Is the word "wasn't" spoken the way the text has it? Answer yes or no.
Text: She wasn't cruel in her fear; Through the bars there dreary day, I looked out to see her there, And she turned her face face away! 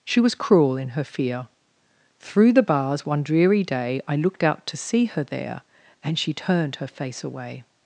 no